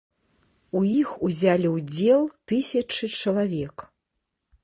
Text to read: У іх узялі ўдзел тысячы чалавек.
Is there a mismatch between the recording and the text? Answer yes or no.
no